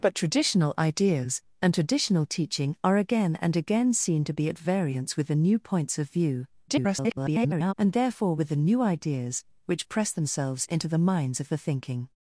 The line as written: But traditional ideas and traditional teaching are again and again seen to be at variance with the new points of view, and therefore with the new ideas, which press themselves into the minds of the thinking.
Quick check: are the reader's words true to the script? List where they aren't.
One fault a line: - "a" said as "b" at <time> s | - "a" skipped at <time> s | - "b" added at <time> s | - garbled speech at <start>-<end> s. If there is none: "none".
- garbled speech at 6.7-7.7 s